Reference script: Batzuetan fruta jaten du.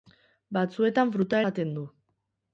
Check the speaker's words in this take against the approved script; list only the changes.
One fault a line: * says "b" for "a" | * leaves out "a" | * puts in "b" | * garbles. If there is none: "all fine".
all fine